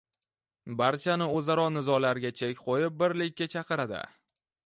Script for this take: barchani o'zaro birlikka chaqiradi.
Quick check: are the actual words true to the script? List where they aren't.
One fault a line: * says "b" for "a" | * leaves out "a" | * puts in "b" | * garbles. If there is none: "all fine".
* puts in "nizolarga chek qo'yib"